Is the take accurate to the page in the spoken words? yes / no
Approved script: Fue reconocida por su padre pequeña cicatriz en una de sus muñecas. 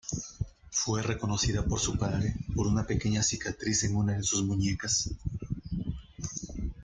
no